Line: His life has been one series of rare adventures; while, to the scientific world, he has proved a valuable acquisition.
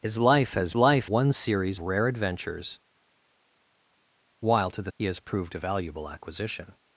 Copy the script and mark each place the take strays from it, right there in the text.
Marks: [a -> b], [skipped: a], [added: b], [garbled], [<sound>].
His life has [been -> life] one series [skipped: of] rare adventures; while, to the [skipped: scientific world,] he has proved a valuable acquisition.